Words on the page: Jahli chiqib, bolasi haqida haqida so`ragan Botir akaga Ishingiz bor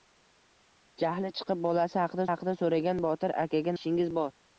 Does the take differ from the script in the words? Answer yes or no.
no